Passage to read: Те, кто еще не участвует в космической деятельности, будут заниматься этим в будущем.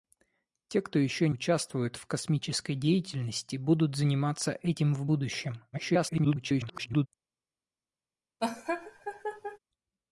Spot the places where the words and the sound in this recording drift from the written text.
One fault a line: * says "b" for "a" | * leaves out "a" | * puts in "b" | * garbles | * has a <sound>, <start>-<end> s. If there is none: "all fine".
* leaves out "не"
* garbles
* has a laugh, 8.4-9.6 s